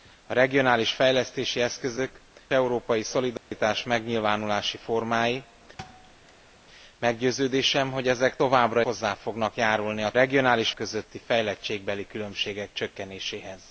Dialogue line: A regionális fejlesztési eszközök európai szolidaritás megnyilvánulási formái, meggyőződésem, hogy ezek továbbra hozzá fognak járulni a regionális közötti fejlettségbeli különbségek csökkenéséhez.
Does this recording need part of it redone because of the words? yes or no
no